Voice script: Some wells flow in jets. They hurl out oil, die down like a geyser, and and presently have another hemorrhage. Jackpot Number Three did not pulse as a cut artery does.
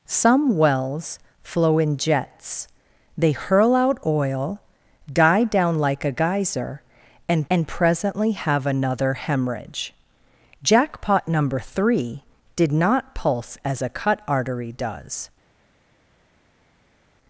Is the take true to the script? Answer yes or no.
yes